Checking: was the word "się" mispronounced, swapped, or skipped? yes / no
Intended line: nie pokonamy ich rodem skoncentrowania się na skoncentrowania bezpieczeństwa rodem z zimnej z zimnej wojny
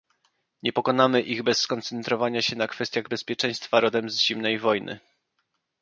no